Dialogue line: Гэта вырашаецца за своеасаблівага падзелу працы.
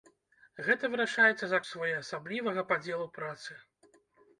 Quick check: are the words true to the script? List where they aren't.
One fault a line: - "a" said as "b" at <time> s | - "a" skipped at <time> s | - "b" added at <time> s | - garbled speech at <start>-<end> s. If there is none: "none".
none